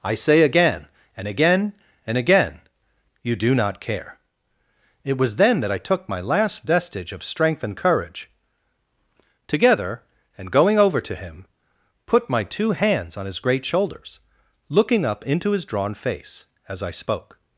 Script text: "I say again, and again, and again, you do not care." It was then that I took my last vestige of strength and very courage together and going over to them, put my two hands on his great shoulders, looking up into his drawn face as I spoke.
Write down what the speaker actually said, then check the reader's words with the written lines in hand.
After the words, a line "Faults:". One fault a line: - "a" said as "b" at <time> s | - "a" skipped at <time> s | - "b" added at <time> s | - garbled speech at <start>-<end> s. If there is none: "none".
"I say again, and again, and again, you do not care." It was then that I took my last vestige of strength and courage together and going over to him, put my two hands on his great shoulders, looking up into his drawn face as I spoke.
Faults:
- "very" skipped at 7.7 s
- "them" said as "him" at 11.1 s